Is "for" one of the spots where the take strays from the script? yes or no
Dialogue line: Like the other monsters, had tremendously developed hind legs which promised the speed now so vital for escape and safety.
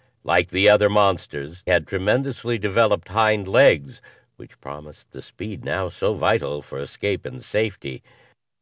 no